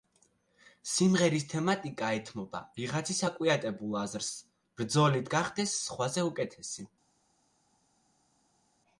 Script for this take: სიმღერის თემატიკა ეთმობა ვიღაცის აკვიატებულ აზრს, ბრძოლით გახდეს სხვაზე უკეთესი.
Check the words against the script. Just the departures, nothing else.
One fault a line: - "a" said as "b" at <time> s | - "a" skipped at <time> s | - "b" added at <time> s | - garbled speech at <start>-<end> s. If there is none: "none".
none